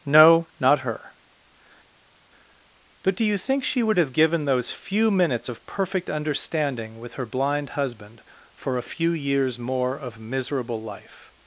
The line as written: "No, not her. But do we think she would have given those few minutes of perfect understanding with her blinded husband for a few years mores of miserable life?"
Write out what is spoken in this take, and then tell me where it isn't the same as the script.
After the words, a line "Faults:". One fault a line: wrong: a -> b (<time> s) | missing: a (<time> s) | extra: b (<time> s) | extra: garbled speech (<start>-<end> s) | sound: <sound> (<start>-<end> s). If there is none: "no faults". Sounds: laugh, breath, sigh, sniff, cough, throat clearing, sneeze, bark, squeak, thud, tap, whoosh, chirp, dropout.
"No, not her. But do you think she would have given those few minutes of perfect understanding with her blind husband for a few years more of miserable life?"
Faults:
wrong: we -> you (3.2 s)
wrong: blinded -> blind (7.3 s)
wrong: mores -> more (9.6 s)